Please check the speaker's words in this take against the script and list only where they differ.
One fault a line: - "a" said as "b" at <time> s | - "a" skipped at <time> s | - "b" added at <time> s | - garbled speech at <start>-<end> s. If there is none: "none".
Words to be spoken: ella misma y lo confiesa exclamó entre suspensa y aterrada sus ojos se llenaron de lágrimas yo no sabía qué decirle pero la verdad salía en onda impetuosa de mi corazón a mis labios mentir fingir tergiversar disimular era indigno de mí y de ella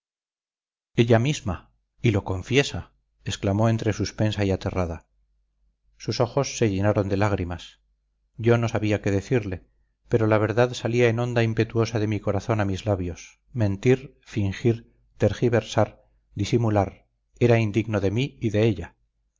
none